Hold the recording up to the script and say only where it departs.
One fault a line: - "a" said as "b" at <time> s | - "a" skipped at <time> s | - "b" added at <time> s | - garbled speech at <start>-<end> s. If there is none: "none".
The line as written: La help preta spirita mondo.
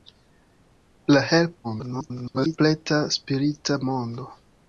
- garbled speech at 1.6-2.6 s